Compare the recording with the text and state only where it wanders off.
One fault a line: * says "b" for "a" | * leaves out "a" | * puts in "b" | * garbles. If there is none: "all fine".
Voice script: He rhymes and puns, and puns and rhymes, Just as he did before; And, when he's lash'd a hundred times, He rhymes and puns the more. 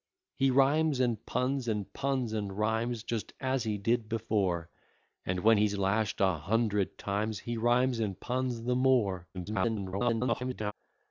* garbles